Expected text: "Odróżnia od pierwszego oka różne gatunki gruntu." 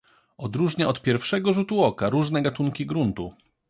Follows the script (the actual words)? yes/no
no